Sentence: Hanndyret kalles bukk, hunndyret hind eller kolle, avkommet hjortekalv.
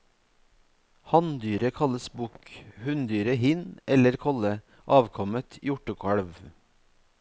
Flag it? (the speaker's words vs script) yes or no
no